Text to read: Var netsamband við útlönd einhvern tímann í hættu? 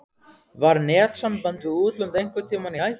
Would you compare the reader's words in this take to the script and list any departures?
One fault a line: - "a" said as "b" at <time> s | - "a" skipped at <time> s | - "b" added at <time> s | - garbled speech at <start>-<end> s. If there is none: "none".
none